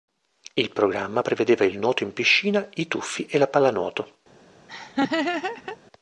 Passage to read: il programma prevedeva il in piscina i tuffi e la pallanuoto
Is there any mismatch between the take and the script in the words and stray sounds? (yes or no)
yes